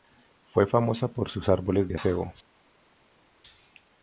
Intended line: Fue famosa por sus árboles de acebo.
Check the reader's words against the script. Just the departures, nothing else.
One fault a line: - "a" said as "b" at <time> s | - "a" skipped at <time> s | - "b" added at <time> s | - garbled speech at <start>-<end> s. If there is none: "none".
none